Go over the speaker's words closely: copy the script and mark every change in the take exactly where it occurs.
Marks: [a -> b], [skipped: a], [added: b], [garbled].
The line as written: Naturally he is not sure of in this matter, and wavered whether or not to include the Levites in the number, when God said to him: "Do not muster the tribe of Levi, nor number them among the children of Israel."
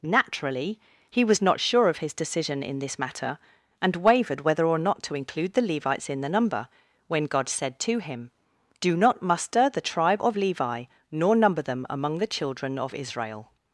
Naturally he [is -> was] not sure of [added: his decision] in this matter, and wavered whether or not to include the Levites in the number, when God said to him: "Do not muster the tribe of Levi, nor number them among the children of Israel."